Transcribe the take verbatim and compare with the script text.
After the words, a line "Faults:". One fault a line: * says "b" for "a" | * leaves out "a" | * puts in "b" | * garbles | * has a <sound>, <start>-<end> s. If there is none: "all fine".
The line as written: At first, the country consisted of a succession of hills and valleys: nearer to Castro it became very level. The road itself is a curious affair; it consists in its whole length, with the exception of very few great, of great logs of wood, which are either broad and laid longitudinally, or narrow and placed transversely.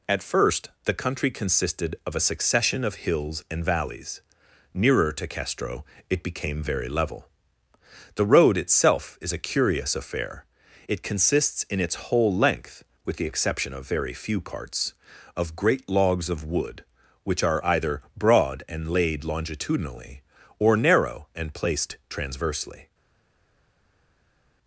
At first, the country consisted of a succession of hills and valleys: nearer to Castro it became very level. The road itself is a curious affair; it consists in its whole length, with the exception of very few parts, of great logs of wood, which are either broad and laid longitudinally, or narrow and placed transversely.
Faults:
* says "parts" for "great"